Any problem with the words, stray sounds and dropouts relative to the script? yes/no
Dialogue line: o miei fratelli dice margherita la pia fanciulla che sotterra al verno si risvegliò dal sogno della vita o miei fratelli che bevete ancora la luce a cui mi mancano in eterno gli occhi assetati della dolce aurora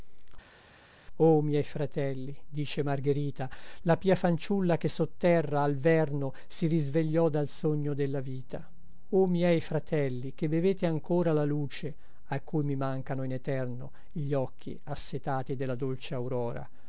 no